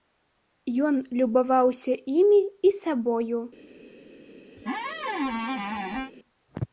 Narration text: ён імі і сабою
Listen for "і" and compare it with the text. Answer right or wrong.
right